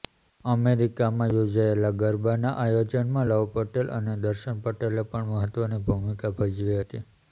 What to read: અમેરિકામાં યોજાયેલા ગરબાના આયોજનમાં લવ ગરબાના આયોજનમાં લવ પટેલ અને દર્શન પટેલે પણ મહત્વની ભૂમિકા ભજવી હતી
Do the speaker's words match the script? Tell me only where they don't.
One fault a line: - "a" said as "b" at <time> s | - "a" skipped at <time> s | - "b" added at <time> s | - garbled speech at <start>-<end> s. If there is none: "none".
- "ગરબાના આયોજનમાં લવ" skipped at 3.4 s